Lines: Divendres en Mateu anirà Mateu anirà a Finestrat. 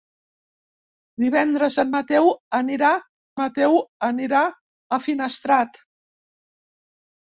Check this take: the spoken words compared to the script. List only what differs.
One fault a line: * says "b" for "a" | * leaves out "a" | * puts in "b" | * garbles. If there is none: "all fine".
all fine